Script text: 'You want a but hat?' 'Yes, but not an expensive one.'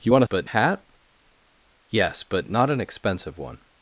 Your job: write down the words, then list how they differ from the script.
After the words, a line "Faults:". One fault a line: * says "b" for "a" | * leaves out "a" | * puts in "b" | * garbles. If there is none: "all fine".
'You want a but hat?' 'Yes, but not an expensive one.'
Faults:
all fine